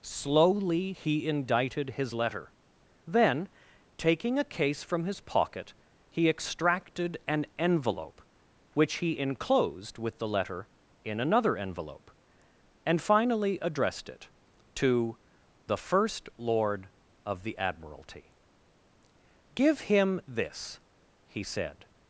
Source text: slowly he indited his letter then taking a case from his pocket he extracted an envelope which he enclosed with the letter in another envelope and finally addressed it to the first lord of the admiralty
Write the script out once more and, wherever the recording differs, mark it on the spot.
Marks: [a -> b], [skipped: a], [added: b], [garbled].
slowly he indited his letter then taking a case from his pocket he extracted an envelope which he enclosed with the letter in another envelope and finally addressed it to the first lord of the admiralty [added: give him this he said]